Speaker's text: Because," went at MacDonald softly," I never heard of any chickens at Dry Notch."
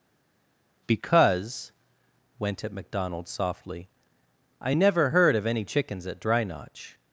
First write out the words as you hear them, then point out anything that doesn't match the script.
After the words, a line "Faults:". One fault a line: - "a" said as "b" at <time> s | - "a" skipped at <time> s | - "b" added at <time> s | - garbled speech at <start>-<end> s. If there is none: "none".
Because," went at MacDonald softly," I never heard of any chickens at Dry Notch."
Faults:
none